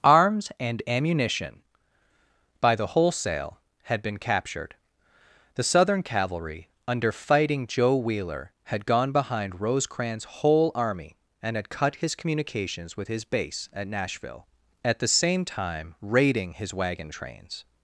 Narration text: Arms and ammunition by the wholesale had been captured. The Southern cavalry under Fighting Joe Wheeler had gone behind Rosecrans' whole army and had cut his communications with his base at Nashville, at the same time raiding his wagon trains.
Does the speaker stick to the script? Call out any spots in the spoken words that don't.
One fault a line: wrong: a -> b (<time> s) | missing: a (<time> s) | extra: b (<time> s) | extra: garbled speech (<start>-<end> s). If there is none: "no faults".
no faults